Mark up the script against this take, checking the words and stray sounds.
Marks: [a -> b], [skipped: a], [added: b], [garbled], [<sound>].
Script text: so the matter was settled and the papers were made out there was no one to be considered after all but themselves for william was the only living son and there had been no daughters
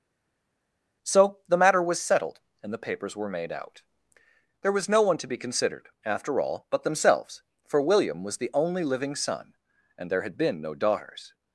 so the matter was settled and the papers were made out there was no one to be considered after all but themselves for william was the only living son and there had been no daughters